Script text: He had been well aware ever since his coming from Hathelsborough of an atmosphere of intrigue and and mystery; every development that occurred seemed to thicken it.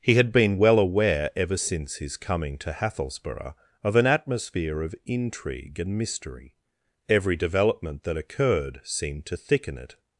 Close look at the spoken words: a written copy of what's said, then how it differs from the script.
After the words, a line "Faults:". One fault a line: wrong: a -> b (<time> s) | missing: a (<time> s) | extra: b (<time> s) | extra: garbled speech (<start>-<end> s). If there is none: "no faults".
He had been well aware ever since his coming to Hathelsborough of an atmosphere of intrigue and mystery; every development that occurred seemed to thicken it.
Faults:
wrong: from -> to (2.6 s)
missing: and (6.0 s)